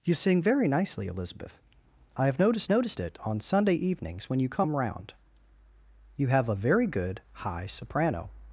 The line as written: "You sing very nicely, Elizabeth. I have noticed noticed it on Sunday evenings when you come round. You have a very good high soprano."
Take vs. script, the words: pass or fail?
pass